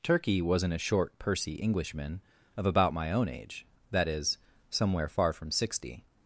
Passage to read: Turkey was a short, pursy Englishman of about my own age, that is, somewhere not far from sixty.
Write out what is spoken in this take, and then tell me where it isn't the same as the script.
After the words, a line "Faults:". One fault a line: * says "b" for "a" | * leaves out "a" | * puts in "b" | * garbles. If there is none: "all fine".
Turkey wasn't a short, pursy Englishman of about my own age, that is, somewhere far from sixty.
Faults:
* says "wasn't" for "was"
* leaves out "not"